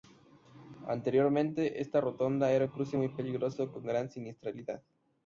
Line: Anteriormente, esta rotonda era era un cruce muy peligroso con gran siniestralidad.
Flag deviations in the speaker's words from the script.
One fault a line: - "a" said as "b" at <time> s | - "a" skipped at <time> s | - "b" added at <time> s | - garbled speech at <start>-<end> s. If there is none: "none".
- "era" skipped at 2.6 s